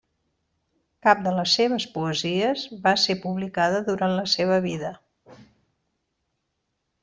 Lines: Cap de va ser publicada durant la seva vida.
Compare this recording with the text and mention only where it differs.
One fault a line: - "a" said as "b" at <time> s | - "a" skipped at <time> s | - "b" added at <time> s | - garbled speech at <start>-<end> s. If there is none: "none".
- "les seves poesies" added at 1.4 s